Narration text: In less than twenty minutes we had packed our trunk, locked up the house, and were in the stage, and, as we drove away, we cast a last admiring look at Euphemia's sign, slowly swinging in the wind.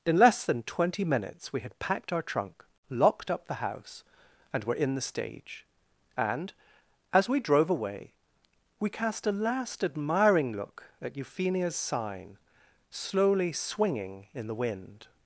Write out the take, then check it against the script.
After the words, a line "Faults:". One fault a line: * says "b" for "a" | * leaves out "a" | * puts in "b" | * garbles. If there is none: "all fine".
In less than twenty minutes we had packed our trunk, locked up the house, and were in the stage, and, as we drove away, we cast a last admiring look at Euphemia's sign, slowly swinging in the wind.
Faults:
all fine